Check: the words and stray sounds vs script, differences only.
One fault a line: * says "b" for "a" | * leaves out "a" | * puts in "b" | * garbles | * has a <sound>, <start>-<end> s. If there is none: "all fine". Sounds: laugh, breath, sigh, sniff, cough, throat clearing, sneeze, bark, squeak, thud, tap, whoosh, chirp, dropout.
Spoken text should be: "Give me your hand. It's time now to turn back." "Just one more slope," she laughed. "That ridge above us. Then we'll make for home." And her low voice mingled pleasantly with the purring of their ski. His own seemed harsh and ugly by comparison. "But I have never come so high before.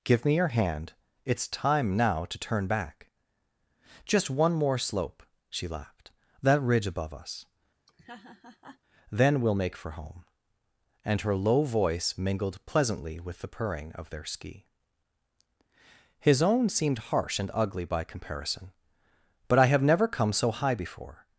* has a laugh, 7.9-8.8 s